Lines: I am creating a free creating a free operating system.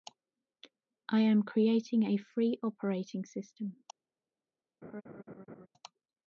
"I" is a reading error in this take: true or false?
false